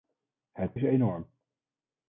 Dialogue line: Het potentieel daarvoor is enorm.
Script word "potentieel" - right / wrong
wrong